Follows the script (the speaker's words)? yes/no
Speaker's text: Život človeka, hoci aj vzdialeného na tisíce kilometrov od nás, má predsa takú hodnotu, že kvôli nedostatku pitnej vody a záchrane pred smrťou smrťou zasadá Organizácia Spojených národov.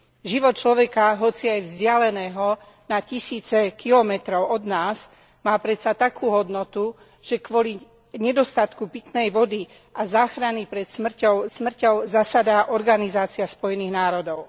yes